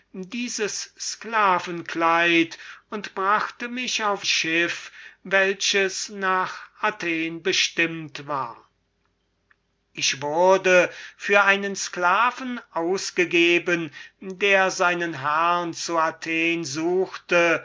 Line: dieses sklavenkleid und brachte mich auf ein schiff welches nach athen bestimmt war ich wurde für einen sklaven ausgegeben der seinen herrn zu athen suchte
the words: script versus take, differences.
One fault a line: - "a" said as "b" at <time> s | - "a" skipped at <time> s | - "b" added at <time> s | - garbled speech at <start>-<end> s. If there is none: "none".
- "ein" skipped at 4.2 s